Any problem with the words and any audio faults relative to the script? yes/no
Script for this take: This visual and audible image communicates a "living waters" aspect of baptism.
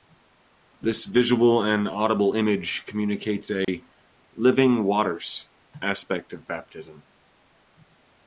yes